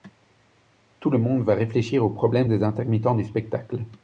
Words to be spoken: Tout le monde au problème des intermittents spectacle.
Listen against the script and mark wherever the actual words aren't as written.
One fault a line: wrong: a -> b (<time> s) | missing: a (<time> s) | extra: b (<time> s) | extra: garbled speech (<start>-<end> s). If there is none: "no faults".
extra: va réfléchir (1.4 s)
extra: du (3.1 s)